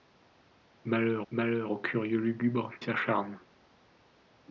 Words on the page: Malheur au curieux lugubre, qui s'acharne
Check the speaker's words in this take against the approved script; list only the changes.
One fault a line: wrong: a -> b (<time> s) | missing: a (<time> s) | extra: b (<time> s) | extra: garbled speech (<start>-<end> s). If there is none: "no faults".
extra: malheur (1.3 s)
missing: qui (2.7 s)